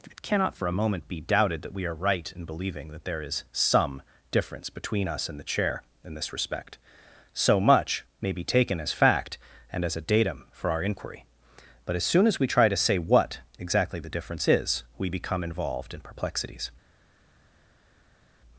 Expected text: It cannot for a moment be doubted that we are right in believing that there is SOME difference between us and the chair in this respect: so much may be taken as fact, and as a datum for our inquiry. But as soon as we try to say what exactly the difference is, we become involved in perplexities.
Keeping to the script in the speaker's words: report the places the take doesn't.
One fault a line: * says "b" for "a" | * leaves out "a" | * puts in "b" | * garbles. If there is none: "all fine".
all fine